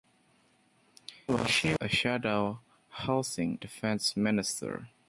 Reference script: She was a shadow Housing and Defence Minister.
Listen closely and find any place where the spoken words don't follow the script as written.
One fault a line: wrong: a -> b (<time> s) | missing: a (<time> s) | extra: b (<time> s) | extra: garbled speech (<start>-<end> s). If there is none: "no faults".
missing: was (1.8 s)
missing: and (3.6 s)